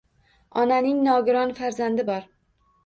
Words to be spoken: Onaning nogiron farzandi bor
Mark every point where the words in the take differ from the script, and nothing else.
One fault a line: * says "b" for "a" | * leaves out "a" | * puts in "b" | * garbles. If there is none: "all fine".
all fine